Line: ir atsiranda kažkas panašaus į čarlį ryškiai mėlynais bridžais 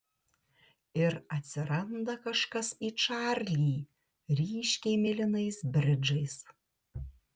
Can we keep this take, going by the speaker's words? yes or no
no